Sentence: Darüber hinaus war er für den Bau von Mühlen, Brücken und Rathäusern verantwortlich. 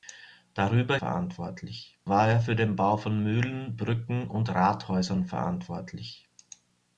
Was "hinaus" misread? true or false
true